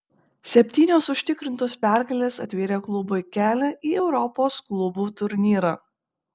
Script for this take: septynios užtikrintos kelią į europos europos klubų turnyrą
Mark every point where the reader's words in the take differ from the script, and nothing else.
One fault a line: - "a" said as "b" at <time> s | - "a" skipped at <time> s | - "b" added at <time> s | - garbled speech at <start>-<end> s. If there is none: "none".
- "pergalės atvėrė klubui" added at 1.9 s
- "europos" skipped at 4.6 s